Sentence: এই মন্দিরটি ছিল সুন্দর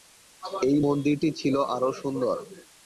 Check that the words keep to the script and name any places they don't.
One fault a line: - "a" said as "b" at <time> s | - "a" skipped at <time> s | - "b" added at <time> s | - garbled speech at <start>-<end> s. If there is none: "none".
- "আরও" added at 1.7 s